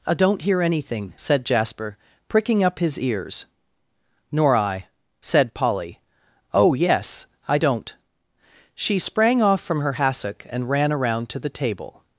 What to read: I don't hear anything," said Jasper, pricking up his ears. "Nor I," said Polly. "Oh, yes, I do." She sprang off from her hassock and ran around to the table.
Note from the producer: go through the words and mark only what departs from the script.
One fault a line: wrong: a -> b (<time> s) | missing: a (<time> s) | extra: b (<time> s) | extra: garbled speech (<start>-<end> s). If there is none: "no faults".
wrong: do -> don't (7.6 s)